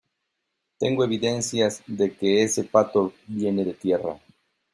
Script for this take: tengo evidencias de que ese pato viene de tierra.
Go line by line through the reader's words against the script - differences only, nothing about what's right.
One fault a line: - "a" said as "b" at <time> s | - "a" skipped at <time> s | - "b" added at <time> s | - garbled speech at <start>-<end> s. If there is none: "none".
none